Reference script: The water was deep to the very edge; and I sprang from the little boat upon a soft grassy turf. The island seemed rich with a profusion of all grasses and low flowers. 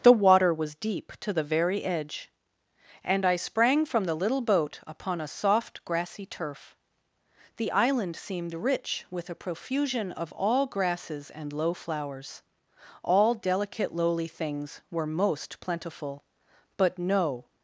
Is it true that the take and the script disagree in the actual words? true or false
true